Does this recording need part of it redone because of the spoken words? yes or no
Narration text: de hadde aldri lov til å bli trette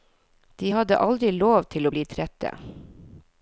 no